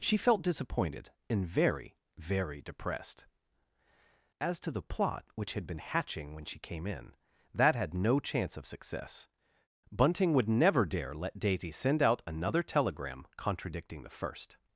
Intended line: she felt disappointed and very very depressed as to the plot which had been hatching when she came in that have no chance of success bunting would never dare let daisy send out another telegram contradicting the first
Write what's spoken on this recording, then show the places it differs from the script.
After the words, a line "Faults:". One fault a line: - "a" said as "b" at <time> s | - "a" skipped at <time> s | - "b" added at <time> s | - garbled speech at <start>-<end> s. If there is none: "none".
she felt disappointed and very very depressed as to the plot which had been hatching when she came in that had no chance of success bunting would never dare let daisy send out another telegram contradicting the first
Faults:
- "have" said as "had" at 7.8 s